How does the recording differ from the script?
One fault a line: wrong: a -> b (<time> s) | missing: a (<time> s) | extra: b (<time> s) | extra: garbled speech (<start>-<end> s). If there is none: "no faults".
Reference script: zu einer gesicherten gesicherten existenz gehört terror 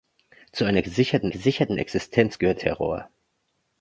no faults